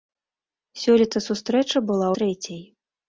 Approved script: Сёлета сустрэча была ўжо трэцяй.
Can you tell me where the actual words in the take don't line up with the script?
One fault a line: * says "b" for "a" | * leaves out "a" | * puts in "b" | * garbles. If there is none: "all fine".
* leaves out "ўжо"